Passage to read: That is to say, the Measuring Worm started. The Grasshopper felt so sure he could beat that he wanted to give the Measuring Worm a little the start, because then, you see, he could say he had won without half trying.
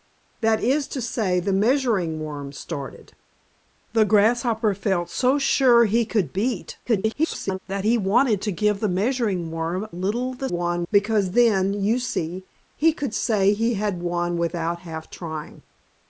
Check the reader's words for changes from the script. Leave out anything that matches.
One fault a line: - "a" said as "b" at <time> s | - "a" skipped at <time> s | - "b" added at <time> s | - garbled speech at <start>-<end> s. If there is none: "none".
- garbled speech at 6.9-7.6 s
- "a" skipped at 9.9 s
- "start" said as "won" at 10.5 s